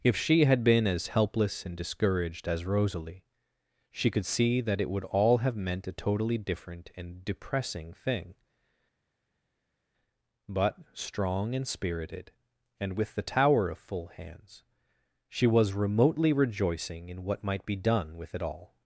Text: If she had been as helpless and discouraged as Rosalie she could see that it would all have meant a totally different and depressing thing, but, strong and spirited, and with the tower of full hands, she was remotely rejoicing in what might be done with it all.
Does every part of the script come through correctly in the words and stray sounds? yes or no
yes